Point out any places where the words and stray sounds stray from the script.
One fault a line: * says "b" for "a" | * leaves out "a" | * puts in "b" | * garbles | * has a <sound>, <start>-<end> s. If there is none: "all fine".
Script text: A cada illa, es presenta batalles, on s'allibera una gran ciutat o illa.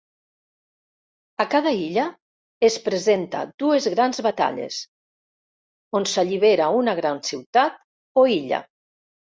* puts in "dues grans"